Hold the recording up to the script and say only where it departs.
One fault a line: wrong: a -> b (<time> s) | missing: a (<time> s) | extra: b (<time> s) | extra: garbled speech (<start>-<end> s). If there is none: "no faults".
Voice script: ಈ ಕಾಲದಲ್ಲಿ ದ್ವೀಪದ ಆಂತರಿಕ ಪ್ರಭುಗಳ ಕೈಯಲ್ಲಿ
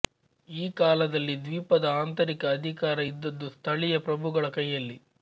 extra: ಅಧಿಕಾರ ಇದ್ದದ್ದು ಸ್ಥಳೀಯ (2.5 s)